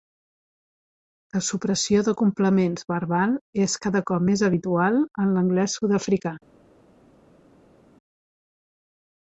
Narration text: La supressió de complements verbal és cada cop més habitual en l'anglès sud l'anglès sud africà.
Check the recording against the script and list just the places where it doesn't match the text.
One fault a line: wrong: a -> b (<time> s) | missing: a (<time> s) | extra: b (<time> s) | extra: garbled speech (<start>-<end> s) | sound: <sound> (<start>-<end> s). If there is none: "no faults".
missing: l'anglès sud (6.0 s)